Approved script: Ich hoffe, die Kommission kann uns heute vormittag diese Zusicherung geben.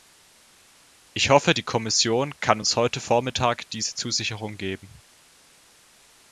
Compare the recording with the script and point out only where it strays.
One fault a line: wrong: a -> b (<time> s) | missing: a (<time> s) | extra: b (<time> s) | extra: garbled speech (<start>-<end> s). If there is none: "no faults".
no faults